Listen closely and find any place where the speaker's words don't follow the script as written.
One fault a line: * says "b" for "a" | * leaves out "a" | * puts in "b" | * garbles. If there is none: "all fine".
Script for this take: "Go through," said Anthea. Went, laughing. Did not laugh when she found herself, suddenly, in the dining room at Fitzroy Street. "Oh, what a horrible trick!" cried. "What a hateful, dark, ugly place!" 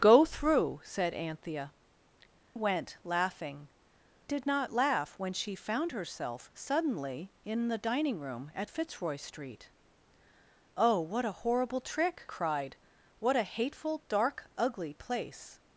all fine